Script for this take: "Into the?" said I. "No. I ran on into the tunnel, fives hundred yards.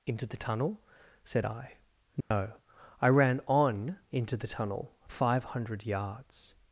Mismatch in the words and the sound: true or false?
true